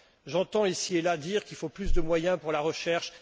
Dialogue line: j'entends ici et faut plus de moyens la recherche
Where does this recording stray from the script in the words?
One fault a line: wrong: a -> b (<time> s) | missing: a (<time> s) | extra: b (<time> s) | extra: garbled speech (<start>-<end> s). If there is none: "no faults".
extra: là dire qu'il (1.0 s)
extra: pour (2.4 s)